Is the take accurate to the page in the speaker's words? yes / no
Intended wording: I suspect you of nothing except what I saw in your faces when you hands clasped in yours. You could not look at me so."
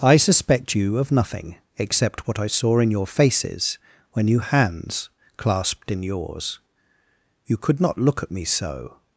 yes